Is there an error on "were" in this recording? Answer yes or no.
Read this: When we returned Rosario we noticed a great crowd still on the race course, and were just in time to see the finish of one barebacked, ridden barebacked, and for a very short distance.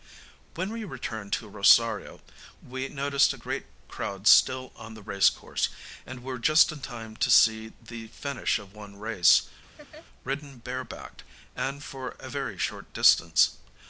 no